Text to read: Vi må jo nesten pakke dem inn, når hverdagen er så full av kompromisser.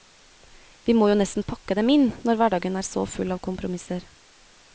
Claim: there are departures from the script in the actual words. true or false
false